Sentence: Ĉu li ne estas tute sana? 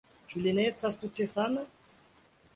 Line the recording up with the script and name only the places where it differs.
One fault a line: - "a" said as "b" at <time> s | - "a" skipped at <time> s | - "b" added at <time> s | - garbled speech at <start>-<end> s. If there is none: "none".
none